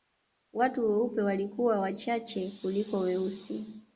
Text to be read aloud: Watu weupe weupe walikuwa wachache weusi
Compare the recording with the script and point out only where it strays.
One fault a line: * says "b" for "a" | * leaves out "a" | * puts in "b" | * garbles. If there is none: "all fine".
* leaves out "weupe"
* puts in "kuliko"